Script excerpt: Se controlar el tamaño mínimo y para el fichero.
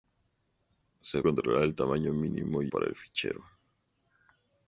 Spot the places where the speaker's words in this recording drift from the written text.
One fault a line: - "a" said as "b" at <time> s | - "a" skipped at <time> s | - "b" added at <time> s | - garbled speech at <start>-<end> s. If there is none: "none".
none